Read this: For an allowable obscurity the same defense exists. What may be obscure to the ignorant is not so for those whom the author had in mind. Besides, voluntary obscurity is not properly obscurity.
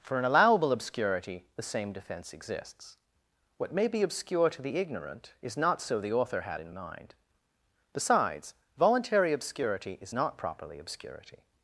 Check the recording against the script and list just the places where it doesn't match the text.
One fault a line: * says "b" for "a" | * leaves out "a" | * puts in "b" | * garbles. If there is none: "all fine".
* leaves out "for those whom"